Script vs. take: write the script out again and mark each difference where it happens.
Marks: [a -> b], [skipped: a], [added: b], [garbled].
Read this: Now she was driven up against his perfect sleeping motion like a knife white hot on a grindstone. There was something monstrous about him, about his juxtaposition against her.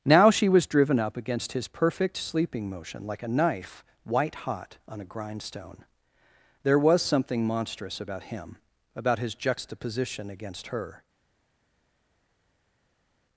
Now she was driven up against his perfect sleeping motion like a knife white hot on a grindstone. There was something monstrous about him, about his juxtaposition against her.